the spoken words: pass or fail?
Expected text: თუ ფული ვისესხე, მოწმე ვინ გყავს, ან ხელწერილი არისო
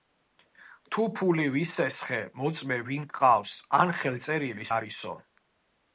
pass